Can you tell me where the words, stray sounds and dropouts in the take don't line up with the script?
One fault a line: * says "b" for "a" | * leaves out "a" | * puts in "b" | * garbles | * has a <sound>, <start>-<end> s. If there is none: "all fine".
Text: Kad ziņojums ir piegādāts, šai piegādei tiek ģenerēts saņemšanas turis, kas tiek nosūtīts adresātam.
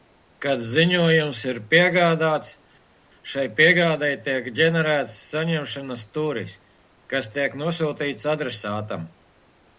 all fine